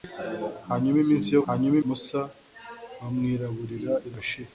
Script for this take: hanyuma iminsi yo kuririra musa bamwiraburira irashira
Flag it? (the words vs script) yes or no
yes